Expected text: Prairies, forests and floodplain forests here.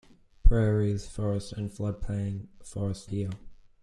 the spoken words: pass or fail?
pass